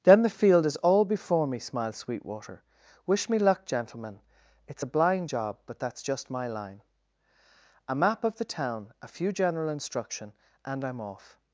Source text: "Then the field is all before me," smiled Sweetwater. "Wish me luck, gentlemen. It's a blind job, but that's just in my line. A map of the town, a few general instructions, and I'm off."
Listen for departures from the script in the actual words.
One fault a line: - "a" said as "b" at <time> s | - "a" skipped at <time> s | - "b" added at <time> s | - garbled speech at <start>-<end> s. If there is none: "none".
- "in" skipped at 6.3 s
- "instructions" said as "instruction" at 9.7 s